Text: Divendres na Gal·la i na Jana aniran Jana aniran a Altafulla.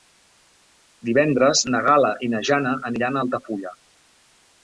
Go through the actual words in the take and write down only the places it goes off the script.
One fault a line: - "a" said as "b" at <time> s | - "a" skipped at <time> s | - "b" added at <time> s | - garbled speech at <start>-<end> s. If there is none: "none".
- "Jana aniran" skipped at 3.2 s